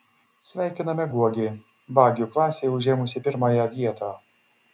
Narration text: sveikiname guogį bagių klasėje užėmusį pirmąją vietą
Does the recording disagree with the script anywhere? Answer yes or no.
no